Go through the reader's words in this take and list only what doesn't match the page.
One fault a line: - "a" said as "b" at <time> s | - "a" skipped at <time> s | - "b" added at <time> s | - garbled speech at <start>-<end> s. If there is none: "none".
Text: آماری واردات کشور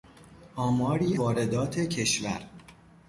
none